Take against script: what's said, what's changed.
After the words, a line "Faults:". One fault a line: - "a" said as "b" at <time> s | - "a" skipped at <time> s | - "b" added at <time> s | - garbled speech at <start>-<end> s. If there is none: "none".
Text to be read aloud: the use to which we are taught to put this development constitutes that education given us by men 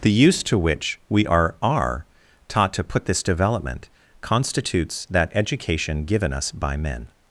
the use to which we are are taught to put this development constitutes that education given us by men
Faults:
- "are" added at 1.6 s